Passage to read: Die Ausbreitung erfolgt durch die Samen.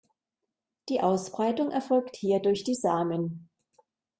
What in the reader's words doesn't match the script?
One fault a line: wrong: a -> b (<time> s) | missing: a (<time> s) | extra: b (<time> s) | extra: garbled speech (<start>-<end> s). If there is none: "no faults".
extra: hier (2.1 s)